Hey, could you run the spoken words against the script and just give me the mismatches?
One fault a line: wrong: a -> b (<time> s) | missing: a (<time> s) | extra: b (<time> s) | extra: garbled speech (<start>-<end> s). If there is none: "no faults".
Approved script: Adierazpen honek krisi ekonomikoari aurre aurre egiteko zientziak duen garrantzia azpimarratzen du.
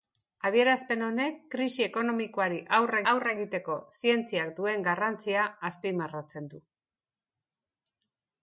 no faults